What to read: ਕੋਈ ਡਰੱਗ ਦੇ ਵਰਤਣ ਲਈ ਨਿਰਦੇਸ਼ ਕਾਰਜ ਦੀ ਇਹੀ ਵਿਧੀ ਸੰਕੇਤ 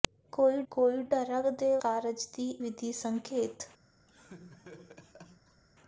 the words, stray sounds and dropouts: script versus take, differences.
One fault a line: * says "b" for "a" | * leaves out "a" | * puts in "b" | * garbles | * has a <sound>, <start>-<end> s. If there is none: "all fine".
* puts in "ਕੋਈ"
* leaves out "ਵਰਤਣ ਲਈ ਨਿਰਦੇਸ਼"
* leaves out "ਇਹੀ"
* has a laugh, 4.1-5.6 s